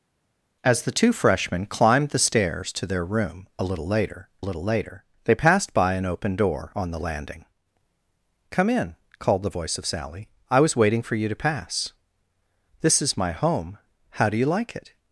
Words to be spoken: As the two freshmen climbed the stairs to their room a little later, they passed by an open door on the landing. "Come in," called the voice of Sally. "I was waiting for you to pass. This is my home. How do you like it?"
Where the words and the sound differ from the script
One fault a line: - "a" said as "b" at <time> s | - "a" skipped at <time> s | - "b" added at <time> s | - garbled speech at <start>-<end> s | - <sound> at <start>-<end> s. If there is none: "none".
- "little later" added at 4.4 s